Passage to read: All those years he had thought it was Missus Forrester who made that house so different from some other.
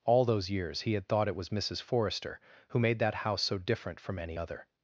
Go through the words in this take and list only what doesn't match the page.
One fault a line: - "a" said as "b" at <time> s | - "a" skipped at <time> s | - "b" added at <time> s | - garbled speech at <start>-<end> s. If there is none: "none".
- "some" said as "any" at 4.2 s